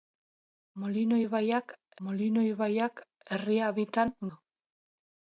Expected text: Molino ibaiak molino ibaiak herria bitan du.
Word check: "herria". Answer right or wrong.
right